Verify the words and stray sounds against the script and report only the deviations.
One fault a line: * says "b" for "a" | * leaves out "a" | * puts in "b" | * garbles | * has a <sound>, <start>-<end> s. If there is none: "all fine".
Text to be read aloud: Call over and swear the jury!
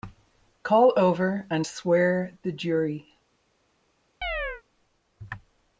* has a chirp, 4.2-4.6 s